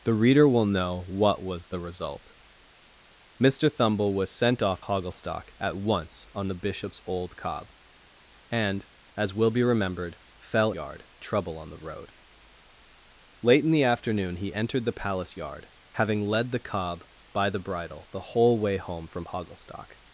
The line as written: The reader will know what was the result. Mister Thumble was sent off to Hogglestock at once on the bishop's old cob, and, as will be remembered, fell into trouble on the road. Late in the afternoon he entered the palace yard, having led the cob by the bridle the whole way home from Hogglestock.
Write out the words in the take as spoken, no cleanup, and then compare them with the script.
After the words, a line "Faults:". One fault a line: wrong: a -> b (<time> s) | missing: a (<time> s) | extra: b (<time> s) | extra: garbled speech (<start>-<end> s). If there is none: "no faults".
The reader will know what was the result. Mister Thumble was sent off Hogglestock at once on the bishop's old cob, and, as will be remembered, fell yard trouble on the road. Late in the afternoon he entered the palace yard, having led the cob by the bridle the whole way home from Hogglestock.
Faults:
missing: to (4.8 s)
wrong: into -> yard (10.7 s)